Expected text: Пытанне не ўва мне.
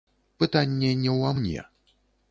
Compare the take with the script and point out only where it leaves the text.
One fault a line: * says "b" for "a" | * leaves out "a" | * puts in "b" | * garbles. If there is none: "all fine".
all fine